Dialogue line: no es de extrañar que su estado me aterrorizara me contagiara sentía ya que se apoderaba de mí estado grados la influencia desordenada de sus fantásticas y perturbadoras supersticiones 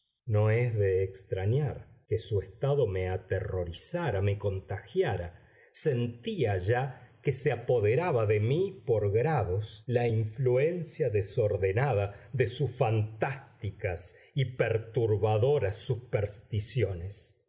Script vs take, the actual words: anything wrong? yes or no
yes